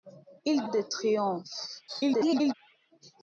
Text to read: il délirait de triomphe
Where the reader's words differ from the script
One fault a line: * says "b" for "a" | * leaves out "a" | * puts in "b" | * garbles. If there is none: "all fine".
* leaves out "délirait"
* garbles